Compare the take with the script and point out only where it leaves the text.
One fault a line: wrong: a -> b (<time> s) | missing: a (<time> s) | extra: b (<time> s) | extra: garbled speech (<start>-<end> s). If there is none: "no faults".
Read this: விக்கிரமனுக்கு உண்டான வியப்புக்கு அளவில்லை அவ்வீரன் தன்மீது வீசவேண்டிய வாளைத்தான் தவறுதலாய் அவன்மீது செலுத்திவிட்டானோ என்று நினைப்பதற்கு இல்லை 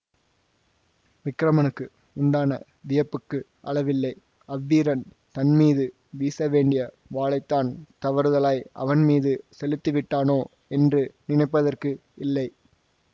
no faults